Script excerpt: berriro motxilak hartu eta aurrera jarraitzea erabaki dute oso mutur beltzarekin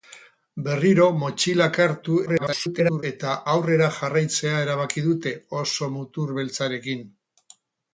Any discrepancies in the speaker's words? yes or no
yes